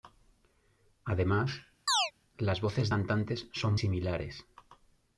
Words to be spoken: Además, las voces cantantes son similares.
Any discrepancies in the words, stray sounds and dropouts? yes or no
yes